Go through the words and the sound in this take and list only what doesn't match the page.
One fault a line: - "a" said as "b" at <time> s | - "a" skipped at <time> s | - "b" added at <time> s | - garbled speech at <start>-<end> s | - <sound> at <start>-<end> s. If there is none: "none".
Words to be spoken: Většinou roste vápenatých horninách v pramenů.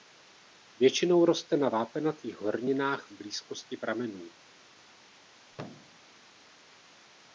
- "na" added at 1.6 s
- "blízkosti" added at 3.1 s
- thud at 5.5-6.0 s